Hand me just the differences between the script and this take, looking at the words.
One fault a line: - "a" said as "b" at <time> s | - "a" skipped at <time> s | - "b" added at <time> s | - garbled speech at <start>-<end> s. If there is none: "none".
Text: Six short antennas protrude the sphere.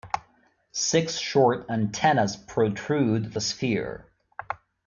none